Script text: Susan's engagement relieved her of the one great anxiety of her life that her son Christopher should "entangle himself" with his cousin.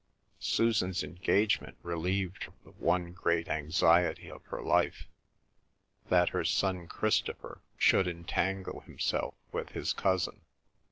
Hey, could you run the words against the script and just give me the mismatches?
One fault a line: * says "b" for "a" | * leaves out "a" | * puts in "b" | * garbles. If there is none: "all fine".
* leaves out "her"